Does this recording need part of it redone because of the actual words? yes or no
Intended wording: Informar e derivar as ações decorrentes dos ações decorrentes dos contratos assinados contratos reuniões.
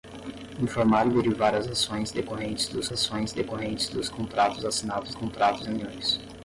no